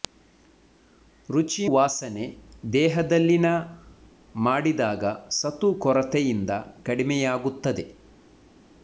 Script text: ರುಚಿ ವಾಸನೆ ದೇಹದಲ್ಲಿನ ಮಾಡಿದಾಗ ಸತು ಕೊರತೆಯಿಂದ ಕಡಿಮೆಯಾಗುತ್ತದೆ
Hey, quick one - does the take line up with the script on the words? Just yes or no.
yes